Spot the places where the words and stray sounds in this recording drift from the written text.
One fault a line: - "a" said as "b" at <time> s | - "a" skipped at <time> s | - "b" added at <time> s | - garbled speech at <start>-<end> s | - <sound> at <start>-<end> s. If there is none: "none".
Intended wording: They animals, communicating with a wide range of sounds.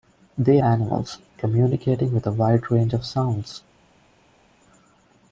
none